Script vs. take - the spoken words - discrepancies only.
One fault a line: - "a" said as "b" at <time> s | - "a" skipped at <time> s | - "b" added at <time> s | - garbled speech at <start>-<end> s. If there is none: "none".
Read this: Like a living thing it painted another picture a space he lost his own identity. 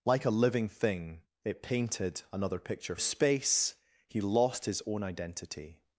none